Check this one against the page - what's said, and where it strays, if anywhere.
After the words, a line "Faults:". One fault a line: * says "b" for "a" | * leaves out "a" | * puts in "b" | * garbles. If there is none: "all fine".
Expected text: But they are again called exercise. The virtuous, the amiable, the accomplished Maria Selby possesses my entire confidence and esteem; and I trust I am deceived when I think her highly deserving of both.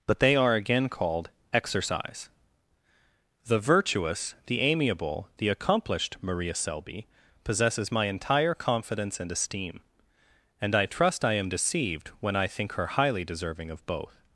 But they are again called exercise. The virtuous, the amiable, the accomplished Maria Selby possesses my entire confidence and esteem; and I trust I am deceived when I think her highly deserving of both.
Faults:
all fine